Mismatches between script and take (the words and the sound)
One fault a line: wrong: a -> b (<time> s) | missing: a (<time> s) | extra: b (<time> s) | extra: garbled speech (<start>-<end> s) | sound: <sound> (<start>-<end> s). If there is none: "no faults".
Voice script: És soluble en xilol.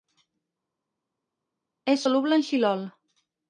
no faults